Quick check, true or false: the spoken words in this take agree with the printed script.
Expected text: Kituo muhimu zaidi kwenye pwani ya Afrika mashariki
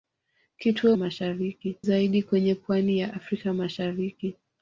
false